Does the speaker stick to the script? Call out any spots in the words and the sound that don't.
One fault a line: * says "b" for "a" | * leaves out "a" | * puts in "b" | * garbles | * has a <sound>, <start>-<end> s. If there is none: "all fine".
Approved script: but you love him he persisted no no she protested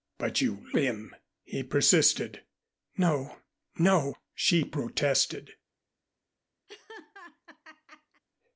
* leaves out "love"
* has a laugh, 6.7-8.2 s